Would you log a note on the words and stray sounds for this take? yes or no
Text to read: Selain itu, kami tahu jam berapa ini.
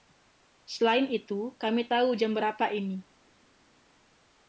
no